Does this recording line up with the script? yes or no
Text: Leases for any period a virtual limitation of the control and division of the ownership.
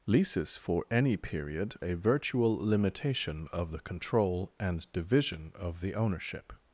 yes